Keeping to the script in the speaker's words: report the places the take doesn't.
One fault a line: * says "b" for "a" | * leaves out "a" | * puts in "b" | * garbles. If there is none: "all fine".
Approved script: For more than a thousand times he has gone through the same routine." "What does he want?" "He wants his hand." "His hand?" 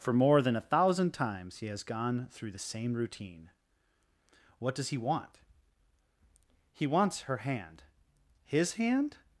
* says "her" for "his"